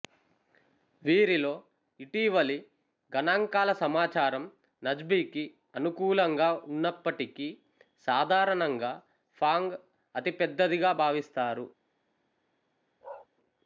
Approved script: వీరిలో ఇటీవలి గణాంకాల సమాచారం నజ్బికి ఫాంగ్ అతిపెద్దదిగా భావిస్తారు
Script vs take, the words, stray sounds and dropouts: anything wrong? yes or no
yes